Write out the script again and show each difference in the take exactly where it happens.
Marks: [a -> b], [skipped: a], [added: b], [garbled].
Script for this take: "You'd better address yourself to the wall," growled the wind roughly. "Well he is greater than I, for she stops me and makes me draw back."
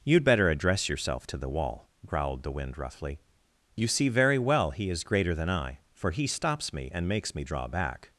"You'd better address yourself to the wall," growled the wind roughly. [added: You see very] "Well he is greater than I, for [she -> he] stops me and makes me draw back."